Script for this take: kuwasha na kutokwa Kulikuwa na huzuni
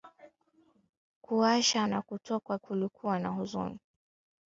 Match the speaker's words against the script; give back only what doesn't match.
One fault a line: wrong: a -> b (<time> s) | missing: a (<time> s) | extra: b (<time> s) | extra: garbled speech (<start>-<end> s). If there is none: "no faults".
no faults